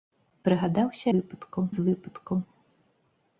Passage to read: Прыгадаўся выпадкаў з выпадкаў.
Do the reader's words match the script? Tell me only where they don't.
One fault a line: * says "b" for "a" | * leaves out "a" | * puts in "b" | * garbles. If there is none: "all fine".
all fine